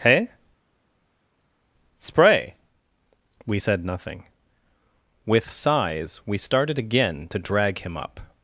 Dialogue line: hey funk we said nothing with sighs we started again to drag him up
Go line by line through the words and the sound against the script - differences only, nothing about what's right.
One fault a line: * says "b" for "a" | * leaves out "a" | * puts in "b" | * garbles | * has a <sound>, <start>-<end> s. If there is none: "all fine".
* says "spray" for "funk"